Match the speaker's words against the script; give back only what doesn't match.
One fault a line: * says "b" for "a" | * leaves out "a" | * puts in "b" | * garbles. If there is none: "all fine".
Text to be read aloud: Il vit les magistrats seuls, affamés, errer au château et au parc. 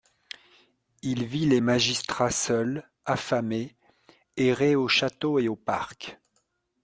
all fine